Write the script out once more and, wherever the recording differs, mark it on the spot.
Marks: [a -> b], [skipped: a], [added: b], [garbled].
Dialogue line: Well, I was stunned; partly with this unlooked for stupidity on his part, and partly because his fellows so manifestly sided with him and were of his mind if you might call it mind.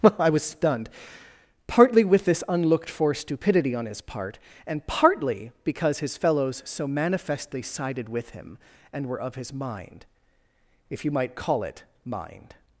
Well, I was stunned; partly with this unlooked for stupidity on his part, and partly because his fellows so manifestly sided with him and were of his mind if you might call it mind.